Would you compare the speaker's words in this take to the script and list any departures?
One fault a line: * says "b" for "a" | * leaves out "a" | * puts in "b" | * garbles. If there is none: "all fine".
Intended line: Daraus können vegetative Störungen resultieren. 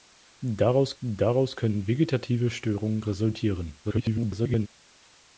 * puts in "daraus"
* garbles